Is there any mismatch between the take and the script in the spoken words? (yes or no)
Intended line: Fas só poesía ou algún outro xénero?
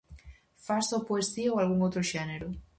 no